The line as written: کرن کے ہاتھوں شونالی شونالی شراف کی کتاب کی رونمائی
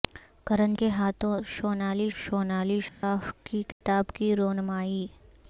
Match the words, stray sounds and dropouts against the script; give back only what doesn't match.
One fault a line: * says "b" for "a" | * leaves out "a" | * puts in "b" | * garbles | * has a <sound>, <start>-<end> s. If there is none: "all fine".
* has a dropout, 2.9-3.0 s
* has a dropout, 3.7-3.8 s